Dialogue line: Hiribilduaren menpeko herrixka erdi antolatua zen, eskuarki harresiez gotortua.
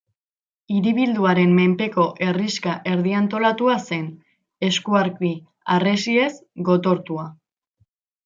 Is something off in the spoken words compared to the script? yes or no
no